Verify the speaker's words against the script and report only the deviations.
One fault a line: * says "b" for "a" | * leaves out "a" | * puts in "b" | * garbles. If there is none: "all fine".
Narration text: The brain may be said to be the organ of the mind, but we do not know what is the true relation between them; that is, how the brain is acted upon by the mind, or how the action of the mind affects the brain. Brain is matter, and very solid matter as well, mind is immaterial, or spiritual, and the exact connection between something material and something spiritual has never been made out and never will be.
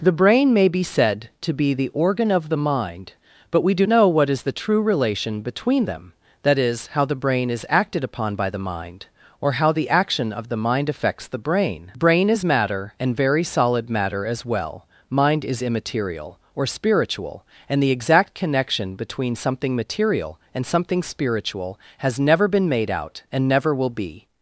* leaves out "not"